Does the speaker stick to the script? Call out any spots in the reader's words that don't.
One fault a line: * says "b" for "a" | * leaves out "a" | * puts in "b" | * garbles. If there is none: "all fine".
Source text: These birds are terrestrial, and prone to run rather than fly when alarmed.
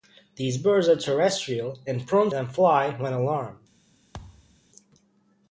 * leaves out "to run rather"